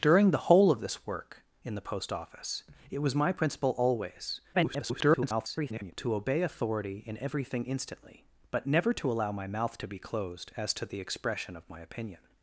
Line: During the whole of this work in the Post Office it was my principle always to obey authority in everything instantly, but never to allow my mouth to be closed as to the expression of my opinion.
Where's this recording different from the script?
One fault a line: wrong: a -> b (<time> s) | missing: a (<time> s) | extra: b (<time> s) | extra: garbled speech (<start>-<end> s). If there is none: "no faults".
extra: garbled speech (4.5-5.9 s)